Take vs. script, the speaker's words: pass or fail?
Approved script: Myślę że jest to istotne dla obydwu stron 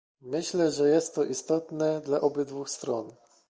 pass